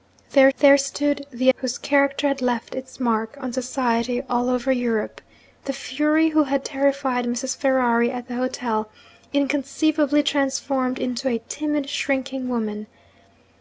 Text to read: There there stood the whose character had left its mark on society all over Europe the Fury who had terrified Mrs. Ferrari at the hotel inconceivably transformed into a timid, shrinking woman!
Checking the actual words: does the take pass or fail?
pass